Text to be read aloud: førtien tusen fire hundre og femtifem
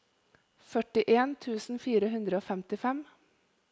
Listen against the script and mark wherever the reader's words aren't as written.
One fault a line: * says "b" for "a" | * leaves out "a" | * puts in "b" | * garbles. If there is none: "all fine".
all fine